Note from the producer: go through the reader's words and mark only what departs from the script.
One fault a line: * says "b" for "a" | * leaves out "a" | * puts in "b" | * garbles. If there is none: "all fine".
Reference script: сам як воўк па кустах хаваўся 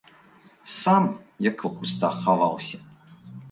* leaves out "воўк"